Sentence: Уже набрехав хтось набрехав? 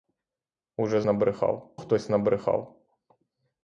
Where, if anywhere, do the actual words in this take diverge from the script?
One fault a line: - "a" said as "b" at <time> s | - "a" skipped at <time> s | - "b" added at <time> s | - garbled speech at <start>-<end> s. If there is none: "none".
none